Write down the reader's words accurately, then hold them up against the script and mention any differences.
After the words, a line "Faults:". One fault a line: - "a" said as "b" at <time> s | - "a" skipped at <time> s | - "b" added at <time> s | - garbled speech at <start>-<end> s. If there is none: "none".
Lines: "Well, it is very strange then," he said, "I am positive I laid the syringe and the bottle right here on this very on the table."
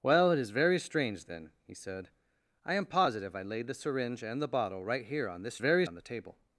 "Well, it is very strange then," he said, "I am positive I laid the syringe and the bottle right here on this very on the table."
Faults:
none